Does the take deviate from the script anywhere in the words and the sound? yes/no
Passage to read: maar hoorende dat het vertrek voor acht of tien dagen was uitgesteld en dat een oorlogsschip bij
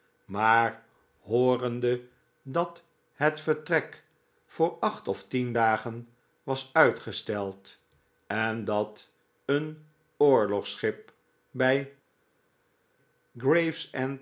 no